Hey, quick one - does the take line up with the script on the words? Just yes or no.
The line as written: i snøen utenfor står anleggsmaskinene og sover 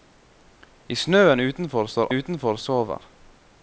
no